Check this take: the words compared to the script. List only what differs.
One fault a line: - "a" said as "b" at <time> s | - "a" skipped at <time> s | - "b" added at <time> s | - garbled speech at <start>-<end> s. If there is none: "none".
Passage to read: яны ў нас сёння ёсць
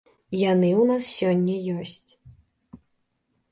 none